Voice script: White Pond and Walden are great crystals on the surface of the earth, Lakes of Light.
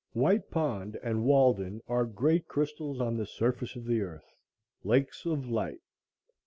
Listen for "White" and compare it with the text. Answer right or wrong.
right